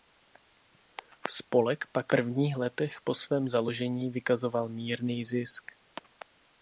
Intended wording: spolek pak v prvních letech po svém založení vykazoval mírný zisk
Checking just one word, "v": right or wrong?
wrong